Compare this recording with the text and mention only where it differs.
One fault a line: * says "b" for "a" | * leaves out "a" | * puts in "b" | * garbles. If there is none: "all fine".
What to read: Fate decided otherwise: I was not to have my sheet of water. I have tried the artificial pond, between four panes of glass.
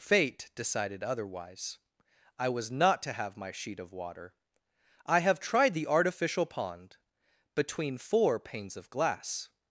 all fine